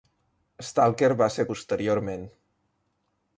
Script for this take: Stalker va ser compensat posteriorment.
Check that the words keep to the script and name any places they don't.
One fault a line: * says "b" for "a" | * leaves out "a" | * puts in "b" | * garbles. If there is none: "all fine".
* leaves out "compensat"